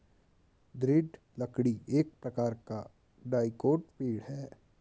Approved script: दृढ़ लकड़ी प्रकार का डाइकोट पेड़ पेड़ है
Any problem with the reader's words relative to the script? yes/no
yes